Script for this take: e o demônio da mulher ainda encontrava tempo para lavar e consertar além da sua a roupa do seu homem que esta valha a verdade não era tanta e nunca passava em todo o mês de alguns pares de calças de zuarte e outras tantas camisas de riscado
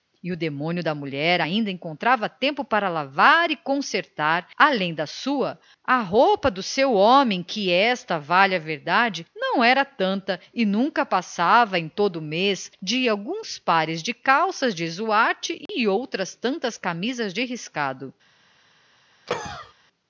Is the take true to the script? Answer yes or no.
yes